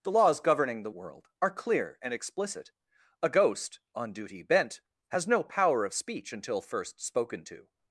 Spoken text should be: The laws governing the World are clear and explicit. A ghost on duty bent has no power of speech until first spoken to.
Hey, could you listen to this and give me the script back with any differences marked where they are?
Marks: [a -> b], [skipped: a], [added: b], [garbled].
The laws governing the World are clear and explicit. A ghost on duty bent has no power of speech until first spoken to.